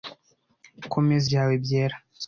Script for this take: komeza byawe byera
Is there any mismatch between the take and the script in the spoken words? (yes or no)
no